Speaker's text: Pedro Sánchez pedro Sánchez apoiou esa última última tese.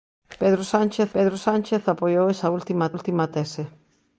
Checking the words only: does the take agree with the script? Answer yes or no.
yes